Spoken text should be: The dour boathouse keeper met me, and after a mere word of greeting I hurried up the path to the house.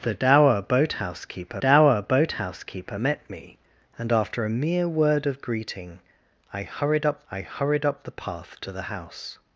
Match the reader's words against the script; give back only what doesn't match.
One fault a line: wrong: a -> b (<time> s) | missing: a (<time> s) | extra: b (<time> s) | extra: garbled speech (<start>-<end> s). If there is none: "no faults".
extra: dour boathouse keeper (1.6 s)
extra: I hurried up (7.3 s)